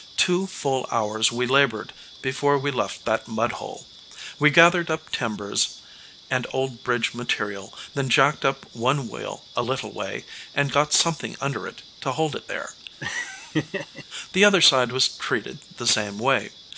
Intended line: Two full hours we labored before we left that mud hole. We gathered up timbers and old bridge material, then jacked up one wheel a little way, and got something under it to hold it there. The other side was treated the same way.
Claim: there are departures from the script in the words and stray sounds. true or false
true